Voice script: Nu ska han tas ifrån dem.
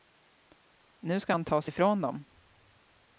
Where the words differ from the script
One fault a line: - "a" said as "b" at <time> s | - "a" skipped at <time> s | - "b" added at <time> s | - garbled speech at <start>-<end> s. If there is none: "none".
none